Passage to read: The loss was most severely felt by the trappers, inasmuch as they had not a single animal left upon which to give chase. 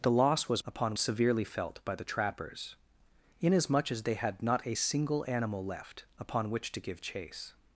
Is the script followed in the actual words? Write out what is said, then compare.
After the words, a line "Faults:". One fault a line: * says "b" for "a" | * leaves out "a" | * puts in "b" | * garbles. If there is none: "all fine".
The loss was upon severely felt by the trappers, inasmuch as they had not a single animal left upon which to give chase.
Faults:
* says "upon" for "most"